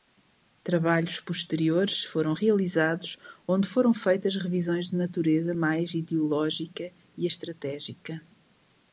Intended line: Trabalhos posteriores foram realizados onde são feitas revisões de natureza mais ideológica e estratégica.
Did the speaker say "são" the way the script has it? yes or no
no